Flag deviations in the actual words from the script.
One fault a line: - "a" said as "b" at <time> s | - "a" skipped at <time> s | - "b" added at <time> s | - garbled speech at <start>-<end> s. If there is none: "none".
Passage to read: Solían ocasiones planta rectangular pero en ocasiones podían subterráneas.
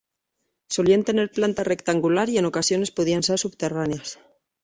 - "ocasiones" said as "tener" at 1.0 s
- "pero" said as "y" at 2.3 s
- "ser" added at 3.2 s